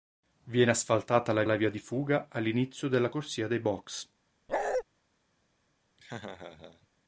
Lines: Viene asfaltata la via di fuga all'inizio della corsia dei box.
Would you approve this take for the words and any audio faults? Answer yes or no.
no